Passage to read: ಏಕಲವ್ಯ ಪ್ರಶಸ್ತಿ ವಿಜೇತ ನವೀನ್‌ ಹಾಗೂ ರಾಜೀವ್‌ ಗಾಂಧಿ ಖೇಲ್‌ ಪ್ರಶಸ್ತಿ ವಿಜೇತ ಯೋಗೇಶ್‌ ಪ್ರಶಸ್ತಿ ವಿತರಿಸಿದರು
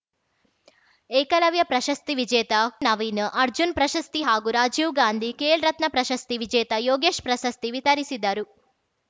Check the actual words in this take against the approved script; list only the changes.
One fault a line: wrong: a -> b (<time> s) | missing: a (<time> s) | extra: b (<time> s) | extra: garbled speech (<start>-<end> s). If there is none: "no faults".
extra: ಅರ್ಜುನ್ ಪ್ರಶಸ್ತಿ (3.4 s)
extra: ರತ್ನ (5.7 s)